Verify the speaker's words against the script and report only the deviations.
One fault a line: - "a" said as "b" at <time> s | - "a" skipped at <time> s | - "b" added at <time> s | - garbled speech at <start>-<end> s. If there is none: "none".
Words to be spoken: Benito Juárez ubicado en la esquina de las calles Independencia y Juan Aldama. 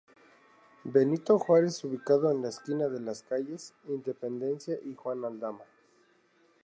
none